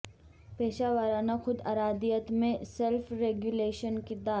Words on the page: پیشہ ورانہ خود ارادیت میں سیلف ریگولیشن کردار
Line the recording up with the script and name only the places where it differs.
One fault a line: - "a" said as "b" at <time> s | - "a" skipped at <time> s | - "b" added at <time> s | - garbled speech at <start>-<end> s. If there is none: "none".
none